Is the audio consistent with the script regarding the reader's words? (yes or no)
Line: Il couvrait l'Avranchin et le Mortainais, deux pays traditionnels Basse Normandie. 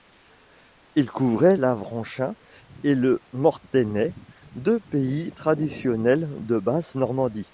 no